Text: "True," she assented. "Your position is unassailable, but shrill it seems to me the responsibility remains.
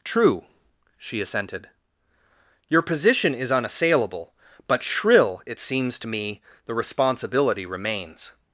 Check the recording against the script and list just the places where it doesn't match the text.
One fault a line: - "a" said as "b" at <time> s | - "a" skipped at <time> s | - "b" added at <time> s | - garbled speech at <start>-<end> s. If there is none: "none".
none